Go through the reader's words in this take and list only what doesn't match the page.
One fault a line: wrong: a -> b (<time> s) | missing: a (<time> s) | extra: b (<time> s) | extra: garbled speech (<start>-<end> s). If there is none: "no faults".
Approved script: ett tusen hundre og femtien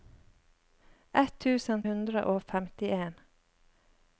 no faults